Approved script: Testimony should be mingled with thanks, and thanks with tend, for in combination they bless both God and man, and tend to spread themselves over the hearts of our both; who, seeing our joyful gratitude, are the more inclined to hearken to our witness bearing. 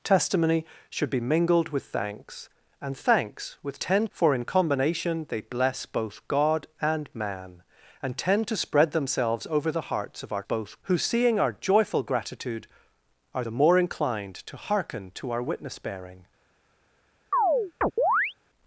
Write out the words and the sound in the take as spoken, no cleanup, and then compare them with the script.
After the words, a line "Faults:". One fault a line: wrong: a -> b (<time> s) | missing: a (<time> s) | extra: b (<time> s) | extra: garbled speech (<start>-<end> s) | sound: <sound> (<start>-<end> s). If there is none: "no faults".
Testimony should be mingled with thanks, and thanks with tend, for in combination they bless both God and man, and tend to spread themselves over the hearts of our both; who, seeing our joyful gratitude, are the more inclined to hearken to our witness bearing.
Faults:
sound: chirp (17.3-18.3 s)